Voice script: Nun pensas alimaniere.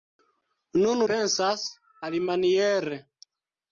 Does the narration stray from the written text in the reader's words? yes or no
no